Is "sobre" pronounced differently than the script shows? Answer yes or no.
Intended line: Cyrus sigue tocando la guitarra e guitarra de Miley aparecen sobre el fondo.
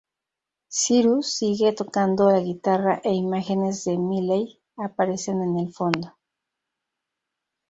yes